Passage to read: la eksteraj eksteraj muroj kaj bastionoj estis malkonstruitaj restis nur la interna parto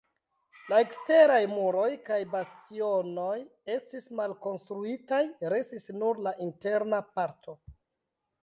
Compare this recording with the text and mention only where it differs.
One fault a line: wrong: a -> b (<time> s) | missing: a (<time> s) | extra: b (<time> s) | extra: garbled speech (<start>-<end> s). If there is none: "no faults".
missing: eksteraj (1.4 s)